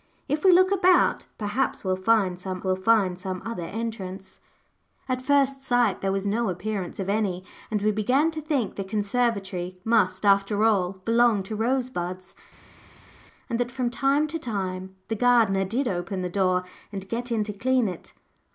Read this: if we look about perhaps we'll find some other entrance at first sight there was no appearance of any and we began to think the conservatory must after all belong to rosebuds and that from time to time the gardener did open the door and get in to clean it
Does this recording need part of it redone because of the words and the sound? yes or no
yes